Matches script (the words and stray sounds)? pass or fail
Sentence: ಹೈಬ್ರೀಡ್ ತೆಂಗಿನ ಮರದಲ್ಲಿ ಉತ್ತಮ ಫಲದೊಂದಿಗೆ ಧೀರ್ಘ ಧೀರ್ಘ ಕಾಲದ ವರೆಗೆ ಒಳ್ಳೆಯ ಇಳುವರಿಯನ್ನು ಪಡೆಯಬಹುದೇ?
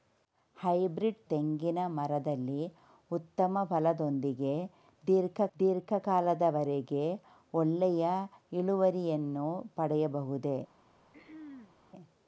fail